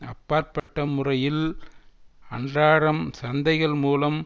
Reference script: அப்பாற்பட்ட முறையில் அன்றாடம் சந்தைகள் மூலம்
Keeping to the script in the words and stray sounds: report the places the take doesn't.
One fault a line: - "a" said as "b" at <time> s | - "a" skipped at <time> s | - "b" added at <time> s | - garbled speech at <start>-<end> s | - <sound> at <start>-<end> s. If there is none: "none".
- dropout at 0.6-0.7 s